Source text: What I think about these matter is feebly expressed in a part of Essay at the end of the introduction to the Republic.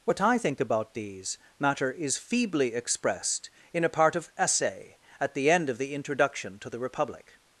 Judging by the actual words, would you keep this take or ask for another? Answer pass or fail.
pass